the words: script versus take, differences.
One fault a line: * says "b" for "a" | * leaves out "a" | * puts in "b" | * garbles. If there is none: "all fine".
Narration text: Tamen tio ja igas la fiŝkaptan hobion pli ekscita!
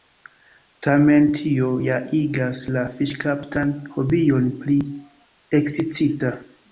all fine